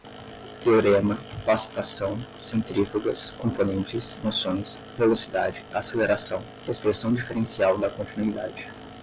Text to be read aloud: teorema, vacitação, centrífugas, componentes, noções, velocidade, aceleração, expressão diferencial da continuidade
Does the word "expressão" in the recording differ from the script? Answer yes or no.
no